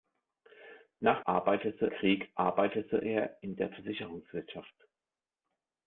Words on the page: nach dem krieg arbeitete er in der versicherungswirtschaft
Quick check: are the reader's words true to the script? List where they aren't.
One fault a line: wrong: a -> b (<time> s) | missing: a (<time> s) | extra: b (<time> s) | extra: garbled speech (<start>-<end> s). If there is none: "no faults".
wrong: dem -> arbeitete (1.2 s)